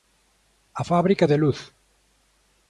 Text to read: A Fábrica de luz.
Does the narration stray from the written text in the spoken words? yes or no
no